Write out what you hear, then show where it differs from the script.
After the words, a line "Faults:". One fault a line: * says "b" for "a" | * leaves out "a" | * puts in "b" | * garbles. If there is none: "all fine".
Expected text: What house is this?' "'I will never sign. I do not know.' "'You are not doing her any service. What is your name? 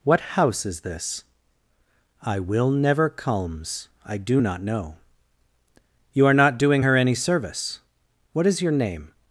What house is this?' "'I will never culms. I do not know.' "'You are not doing her any service. What is your name?
Faults:
* says "culms" for "sign"